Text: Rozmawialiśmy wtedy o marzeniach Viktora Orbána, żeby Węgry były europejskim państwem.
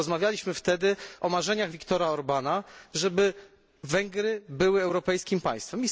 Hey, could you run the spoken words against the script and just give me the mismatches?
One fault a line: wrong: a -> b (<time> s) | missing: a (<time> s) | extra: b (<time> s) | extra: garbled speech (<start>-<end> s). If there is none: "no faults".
no faults